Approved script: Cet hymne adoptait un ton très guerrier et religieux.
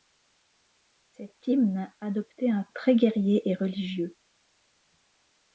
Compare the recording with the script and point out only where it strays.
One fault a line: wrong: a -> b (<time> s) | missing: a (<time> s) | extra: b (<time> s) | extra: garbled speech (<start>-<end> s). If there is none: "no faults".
missing: ton (2.6 s)